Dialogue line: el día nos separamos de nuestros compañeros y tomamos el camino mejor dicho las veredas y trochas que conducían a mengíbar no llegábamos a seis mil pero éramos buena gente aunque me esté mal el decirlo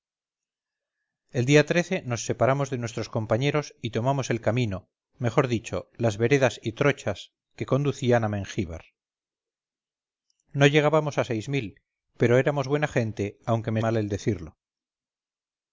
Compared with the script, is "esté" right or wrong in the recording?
wrong